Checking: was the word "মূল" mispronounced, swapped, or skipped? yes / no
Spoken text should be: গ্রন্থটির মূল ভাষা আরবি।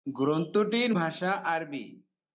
yes